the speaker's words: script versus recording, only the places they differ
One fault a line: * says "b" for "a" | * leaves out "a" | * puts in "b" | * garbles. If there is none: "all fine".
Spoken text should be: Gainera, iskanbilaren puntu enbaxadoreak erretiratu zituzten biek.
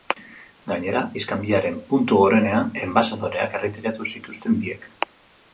* puts in "gorenean"